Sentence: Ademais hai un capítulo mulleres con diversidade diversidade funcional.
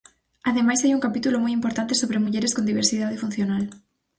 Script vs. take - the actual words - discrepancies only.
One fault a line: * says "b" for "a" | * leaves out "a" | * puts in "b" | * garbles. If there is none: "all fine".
* puts in "moi importante sobre"
* leaves out "diversidade"